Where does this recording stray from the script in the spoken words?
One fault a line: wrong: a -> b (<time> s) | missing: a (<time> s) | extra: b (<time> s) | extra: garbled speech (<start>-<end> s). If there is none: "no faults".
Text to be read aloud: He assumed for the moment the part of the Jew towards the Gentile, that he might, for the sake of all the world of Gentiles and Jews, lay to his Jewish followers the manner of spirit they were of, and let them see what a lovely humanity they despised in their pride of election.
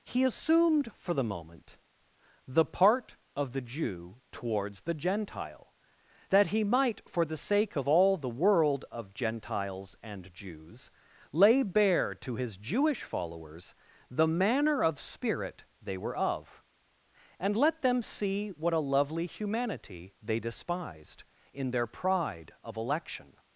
extra: bare (11.6 s)